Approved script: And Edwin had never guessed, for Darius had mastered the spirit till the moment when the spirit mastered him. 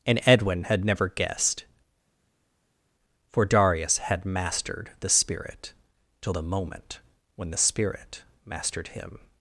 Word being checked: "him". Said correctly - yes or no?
yes